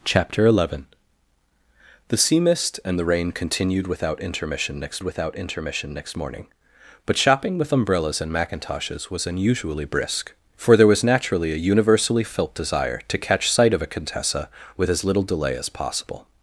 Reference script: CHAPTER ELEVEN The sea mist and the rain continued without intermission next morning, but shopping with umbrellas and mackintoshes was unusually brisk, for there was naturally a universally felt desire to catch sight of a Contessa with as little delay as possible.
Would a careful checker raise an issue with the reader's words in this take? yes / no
yes